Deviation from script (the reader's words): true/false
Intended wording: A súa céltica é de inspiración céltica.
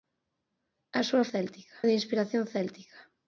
false